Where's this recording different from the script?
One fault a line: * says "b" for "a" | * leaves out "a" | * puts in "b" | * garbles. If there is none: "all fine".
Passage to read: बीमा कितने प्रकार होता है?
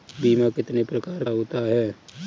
all fine